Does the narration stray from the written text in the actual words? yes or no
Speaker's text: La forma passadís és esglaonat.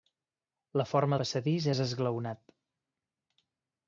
no